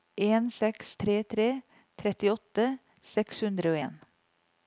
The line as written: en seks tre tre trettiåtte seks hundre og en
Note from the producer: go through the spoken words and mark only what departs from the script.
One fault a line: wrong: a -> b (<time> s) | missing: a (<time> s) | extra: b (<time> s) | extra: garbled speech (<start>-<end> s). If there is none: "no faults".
no faults